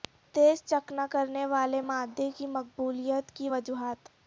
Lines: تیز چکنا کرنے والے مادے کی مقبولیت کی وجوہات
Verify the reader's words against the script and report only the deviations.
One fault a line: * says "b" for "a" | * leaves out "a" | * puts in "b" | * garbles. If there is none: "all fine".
all fine